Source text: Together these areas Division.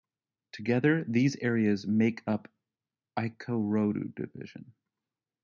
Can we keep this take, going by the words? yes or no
no